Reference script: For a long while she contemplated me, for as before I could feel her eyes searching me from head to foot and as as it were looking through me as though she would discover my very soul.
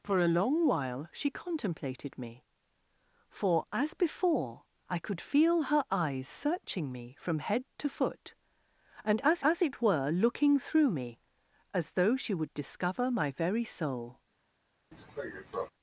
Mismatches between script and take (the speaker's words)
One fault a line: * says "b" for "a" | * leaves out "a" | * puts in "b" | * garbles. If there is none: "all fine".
all fine